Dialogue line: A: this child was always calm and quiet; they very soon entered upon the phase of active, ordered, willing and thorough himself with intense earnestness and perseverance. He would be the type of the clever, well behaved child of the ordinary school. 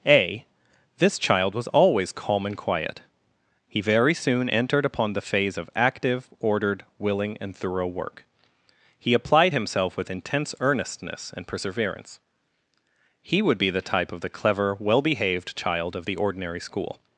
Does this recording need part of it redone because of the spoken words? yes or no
yes